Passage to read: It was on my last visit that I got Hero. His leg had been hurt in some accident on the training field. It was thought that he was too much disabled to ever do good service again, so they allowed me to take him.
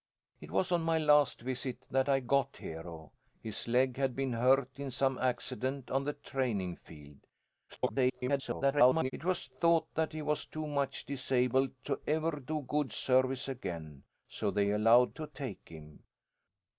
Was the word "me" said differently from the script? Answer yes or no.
yes